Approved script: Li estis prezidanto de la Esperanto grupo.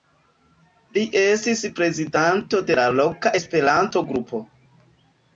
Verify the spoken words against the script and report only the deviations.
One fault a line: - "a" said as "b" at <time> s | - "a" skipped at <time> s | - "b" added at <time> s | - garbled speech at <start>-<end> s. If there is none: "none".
- "loka" added at 3.0 s